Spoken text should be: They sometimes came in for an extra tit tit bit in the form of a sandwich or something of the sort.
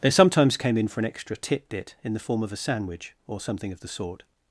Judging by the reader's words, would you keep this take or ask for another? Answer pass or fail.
fail